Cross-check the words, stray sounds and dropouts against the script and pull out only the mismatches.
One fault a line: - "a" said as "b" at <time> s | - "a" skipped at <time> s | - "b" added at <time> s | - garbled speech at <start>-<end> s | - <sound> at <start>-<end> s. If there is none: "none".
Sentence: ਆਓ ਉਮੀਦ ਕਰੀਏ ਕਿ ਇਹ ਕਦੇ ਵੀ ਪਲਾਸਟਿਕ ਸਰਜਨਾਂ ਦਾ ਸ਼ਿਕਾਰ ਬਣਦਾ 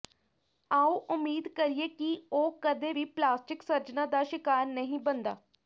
- "ਇਹ" said as "ਉਹ" at 2.3 s
- "ਨਹੀਂ" added at 4.7 s